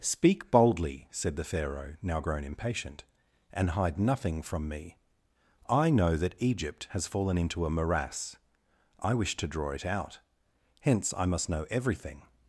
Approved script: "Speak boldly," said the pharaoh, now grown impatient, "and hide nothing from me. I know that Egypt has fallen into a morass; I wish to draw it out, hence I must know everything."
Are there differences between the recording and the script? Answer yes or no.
no